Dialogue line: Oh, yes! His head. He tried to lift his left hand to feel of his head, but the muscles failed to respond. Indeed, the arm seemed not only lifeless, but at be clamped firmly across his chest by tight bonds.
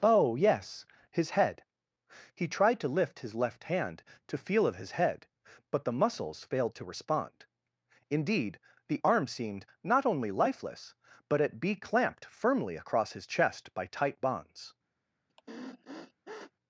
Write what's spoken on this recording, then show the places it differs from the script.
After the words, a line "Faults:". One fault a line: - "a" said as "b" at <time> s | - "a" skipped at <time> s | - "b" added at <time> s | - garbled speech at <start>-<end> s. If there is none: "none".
Oh, yes! His head. He tried to lift his left hand to feel of his head, but the muscles failed to respond. Indeed, the arm seemed not only lifeless, but at be clamped firmly across his chest by tight bonds.
Faults:
none